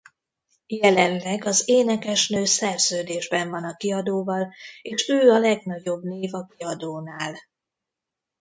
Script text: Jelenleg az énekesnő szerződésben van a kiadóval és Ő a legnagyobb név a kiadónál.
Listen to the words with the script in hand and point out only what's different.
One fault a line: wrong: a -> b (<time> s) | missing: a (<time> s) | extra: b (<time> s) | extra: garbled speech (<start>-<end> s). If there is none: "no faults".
no faults